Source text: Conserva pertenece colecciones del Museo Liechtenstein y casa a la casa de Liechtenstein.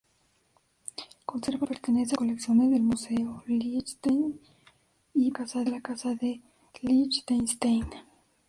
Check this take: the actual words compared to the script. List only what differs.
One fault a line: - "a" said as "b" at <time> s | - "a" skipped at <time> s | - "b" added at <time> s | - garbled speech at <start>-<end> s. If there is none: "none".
none